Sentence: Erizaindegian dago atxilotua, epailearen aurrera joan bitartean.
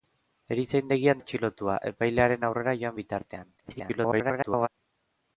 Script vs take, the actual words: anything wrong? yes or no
yes